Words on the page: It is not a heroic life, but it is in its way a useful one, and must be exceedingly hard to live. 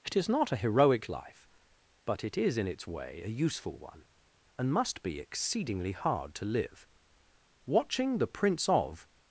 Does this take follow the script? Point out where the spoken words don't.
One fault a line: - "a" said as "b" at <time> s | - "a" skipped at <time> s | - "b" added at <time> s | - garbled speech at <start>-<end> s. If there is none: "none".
- "Watching the Prince of" added at 7.7 s